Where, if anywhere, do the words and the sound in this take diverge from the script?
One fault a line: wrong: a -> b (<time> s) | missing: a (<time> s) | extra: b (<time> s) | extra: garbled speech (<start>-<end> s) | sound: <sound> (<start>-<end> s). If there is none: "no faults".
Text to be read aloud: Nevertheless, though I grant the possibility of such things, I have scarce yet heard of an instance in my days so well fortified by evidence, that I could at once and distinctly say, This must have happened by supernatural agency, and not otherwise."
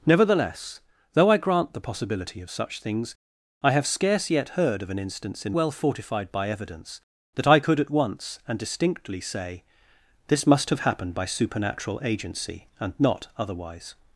missing: my days so (5.5 s)